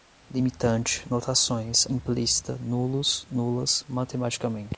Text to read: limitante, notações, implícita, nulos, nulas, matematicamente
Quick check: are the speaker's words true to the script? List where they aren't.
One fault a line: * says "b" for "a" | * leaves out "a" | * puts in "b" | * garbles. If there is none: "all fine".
all fine